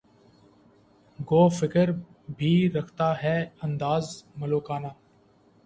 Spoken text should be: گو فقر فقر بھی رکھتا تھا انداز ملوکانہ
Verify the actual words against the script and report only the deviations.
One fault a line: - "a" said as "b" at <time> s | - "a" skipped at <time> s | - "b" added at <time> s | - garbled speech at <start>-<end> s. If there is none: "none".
- "فقر" skipped at 1.9 s
- "تھا" said as "ہے" at 3.2 s